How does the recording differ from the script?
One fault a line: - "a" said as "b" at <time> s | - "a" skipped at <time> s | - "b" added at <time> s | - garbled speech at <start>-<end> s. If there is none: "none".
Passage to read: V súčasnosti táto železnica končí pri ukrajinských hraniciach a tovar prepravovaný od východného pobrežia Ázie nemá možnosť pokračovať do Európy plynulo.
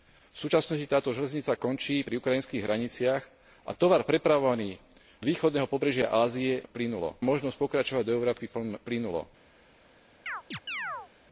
- "od" skipped at 4.8 s
- "nemá" said as "plynulo" at 6.7 s